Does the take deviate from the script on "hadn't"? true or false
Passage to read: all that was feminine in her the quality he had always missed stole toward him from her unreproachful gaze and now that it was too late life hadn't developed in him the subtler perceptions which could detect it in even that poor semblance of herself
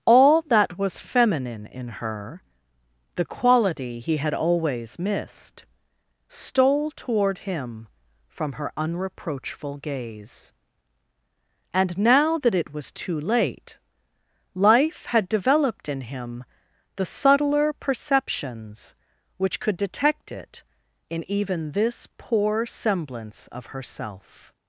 true